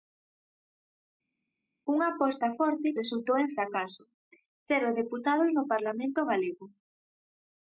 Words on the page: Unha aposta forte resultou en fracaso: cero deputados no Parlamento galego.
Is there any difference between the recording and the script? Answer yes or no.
no